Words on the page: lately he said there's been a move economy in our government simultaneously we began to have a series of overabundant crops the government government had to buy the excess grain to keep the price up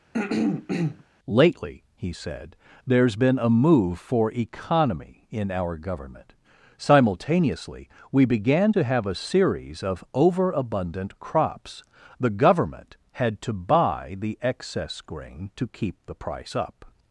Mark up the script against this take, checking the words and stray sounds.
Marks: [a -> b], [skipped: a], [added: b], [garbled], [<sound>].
[throat clearing] lately he said there's been a move [added: for] economy in our government simultaneously we began to have a series of overabundant crops the government [skipped: government] had to buy the excess grain to keep the price up